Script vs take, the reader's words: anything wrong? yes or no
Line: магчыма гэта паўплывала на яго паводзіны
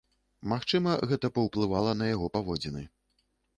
no